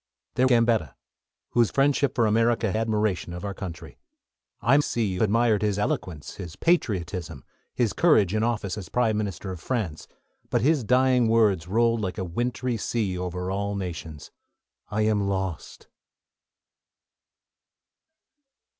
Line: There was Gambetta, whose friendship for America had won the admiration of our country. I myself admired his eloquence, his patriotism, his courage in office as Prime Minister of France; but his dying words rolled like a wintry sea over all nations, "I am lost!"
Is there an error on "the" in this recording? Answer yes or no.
yes